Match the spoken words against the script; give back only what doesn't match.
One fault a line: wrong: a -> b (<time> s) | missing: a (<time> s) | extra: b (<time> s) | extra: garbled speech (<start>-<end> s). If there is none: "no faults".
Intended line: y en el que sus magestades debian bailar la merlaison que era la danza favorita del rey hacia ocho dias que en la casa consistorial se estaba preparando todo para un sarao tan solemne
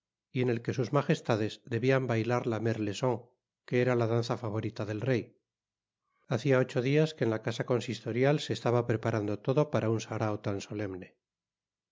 no faults